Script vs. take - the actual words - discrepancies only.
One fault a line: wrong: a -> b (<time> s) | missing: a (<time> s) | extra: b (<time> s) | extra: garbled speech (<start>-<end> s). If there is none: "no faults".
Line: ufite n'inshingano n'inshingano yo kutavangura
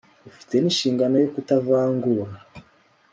missing: n'inshingano (1.1 s)